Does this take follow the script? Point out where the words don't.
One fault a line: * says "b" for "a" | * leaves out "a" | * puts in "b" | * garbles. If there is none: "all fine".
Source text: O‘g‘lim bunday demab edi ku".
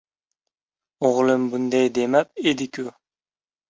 all fine